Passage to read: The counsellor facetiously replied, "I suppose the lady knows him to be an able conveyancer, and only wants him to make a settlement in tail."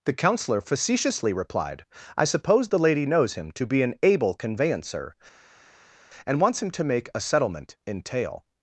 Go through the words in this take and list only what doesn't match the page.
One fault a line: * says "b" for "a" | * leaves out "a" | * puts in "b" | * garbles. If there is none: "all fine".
* leaves out "only"